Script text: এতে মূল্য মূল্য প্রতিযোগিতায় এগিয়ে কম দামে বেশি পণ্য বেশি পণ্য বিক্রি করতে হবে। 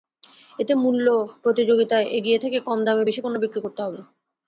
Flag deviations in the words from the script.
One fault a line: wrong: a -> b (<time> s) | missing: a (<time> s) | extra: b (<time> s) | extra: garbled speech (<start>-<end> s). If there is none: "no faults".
missing: মূল্য (1.1 s)
extra: থেকে (2.4 s)
missing: বেশি পণ্য (3.4 s)